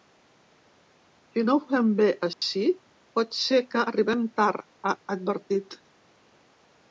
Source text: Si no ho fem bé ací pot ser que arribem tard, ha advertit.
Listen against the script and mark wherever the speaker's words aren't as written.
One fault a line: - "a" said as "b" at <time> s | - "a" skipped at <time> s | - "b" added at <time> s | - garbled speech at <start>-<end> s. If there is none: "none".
none